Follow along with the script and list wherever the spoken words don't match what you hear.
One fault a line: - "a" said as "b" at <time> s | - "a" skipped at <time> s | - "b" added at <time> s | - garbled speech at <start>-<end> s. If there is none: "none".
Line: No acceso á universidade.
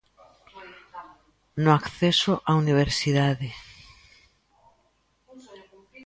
none